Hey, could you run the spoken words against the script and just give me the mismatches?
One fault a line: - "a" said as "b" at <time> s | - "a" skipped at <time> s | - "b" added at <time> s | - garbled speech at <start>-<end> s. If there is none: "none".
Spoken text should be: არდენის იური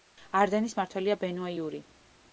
- "მმართველია ბენუა" added at 0.8 s